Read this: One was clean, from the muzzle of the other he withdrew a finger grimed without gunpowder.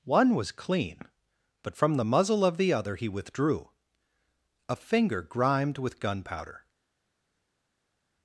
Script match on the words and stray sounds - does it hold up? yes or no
no